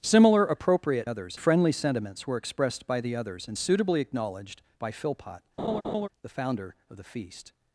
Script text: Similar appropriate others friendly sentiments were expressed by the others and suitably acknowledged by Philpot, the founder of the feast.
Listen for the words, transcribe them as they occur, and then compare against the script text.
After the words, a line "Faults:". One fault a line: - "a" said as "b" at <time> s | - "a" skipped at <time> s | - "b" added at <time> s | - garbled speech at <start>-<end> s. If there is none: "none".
Similar appropriate others friendly sentiments were expressed by the others and suitably acknowledged by Philpot, the founder of the feast.
Faults:
none